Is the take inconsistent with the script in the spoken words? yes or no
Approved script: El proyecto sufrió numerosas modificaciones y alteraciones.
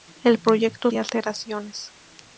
yes